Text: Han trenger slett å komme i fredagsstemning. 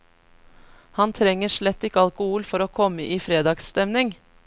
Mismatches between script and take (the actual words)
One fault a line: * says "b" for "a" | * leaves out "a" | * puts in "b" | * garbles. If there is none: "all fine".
* puts in "ikke alkohol for"